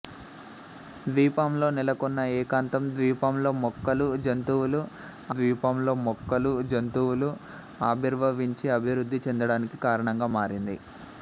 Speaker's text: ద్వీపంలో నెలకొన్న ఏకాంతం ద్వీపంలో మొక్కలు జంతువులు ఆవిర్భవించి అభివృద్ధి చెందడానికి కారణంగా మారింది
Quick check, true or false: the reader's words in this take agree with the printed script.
false